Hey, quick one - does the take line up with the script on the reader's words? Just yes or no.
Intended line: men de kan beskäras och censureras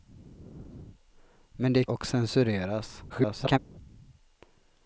no